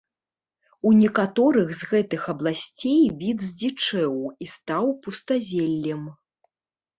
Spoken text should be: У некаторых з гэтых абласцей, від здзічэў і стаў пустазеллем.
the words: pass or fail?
pass